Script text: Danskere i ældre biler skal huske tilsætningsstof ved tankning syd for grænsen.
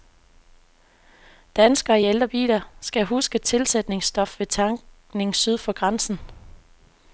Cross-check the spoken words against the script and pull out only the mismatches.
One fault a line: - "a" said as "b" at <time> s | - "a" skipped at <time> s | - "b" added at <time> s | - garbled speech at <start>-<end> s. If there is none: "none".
none